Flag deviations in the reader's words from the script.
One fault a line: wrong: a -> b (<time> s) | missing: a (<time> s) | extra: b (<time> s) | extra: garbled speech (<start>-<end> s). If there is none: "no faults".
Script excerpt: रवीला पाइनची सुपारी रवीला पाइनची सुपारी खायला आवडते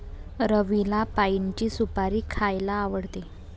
missing: रवीला पाइनची सुपारी (2.2 s)